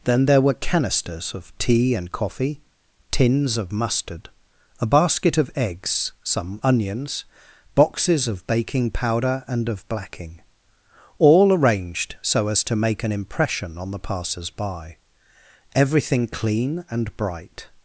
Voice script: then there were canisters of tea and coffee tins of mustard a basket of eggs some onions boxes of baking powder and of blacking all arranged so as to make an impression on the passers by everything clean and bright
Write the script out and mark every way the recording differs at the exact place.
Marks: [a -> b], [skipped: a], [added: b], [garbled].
then there were canisters of tea and coffee tins of mustard a basket of eggs some onions boxes of baking powder and of blacking all arranged so as to make an impression on the passers by everything clean and bright